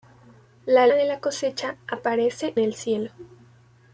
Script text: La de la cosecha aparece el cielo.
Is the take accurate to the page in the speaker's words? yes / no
yes